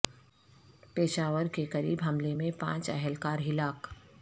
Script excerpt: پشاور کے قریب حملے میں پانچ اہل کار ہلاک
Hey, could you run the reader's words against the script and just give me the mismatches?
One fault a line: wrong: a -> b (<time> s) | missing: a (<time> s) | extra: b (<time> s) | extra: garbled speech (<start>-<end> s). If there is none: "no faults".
no faults